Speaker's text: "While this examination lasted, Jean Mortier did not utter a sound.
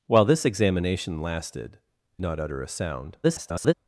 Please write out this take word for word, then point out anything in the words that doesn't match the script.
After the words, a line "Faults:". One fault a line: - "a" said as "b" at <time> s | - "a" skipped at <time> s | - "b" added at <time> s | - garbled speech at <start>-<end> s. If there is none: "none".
"While this examination lasted, Not utter a sound. [garbled]
Faults:
- "Jean Mortier did" skipped at 1.8 s
- garbled speech at 3.2-3.7 s